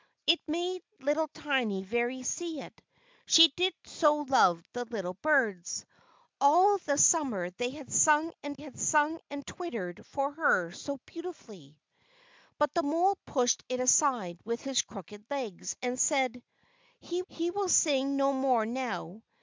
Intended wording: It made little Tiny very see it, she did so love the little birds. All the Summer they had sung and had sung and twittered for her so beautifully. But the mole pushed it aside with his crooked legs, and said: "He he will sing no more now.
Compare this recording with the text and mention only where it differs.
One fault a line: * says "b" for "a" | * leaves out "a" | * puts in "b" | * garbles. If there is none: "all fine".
all fine